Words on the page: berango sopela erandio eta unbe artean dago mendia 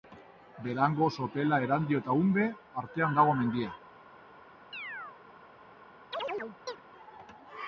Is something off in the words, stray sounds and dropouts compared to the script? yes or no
yes